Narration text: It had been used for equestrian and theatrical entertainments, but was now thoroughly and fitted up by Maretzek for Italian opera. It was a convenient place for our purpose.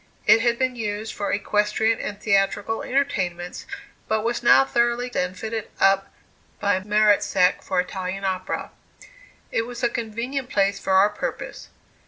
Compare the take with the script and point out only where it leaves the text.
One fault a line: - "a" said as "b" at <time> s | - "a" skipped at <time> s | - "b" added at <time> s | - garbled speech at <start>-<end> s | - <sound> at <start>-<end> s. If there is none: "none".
none